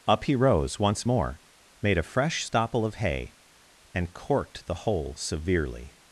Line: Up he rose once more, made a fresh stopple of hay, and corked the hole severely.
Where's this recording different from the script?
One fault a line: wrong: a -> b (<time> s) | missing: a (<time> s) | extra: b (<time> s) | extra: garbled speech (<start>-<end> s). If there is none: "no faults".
no faults